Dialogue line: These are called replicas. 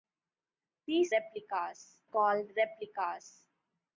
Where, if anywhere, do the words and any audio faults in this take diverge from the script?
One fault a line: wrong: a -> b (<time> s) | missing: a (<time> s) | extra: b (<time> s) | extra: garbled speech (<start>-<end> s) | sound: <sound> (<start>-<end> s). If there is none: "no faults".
wrong: are -> replicas (1.1 s)